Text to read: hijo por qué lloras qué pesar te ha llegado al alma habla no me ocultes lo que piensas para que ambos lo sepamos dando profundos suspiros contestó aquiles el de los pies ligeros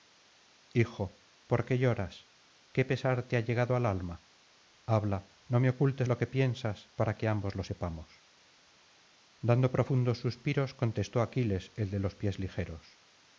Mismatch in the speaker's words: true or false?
false